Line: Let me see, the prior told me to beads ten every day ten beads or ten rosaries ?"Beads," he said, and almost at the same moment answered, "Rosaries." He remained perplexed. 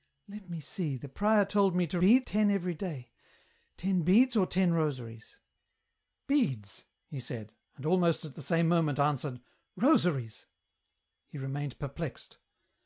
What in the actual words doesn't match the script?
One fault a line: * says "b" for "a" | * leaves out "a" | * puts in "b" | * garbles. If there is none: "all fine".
all fine